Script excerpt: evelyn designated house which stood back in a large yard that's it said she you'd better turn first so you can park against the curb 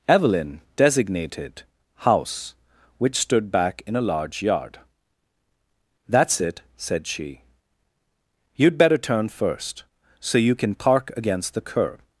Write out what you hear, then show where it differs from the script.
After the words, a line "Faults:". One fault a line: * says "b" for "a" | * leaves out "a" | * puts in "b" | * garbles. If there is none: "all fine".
evelyn designated house which stood back in a large yard that's it said she you'd better turn first so you can park against the curb
Faults:
all fine